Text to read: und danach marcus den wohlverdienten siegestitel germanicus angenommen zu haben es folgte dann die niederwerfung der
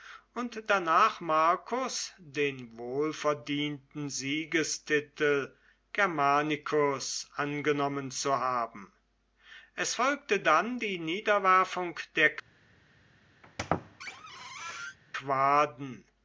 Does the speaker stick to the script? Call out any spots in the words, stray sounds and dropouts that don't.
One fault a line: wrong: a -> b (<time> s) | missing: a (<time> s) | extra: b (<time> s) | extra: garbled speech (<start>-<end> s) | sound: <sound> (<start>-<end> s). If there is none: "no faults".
sound: squeak (13.4-15.0 s)